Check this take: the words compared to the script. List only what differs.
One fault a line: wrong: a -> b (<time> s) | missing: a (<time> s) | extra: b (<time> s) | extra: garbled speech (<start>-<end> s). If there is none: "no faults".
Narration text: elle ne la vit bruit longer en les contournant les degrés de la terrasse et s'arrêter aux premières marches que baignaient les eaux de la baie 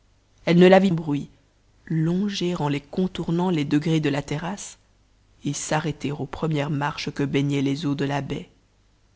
no faults